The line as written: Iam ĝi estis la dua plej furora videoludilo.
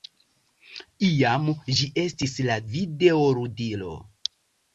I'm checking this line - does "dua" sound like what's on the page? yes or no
no